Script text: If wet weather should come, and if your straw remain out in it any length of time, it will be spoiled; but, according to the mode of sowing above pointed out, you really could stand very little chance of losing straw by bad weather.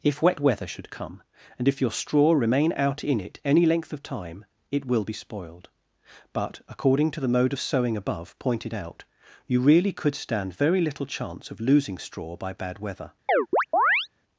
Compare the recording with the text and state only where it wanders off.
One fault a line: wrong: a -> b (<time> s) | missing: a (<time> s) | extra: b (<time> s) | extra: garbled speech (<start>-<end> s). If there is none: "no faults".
no faults